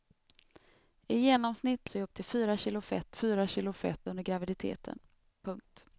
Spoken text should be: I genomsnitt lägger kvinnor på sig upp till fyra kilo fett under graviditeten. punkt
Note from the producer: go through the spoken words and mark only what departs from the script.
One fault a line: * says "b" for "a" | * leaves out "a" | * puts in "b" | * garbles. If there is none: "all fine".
* says "sig upp till fyra kilo fett" for "lägger kvinnor på sig upp till"